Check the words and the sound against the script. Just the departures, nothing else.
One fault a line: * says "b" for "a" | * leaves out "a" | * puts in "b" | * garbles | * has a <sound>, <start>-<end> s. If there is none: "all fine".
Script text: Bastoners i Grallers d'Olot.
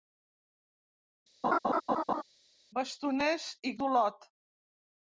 * has a laugh, 1.4-2.2 s
* leaves out "Grallers"